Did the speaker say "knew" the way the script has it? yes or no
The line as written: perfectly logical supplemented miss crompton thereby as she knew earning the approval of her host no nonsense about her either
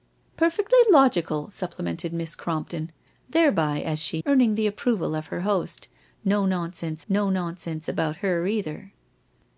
no